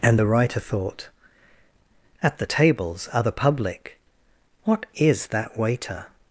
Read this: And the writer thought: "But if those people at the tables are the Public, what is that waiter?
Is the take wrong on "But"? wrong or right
wrong